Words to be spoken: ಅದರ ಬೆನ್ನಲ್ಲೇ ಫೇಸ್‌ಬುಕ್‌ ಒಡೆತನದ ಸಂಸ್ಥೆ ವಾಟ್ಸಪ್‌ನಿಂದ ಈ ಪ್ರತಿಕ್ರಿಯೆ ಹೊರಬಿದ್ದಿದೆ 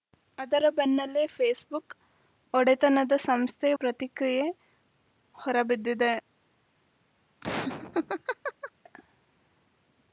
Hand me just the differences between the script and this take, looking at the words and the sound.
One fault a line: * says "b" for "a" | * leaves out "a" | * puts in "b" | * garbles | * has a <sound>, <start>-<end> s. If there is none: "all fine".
* leaves out "ವಾಟ್ಸಪ್‌ನಿಂದ ಈ"
* has a laugh, 7.4-8.7 s